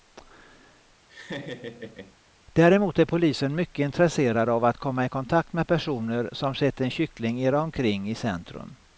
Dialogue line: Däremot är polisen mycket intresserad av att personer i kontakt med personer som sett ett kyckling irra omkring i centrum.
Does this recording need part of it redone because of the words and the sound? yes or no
yes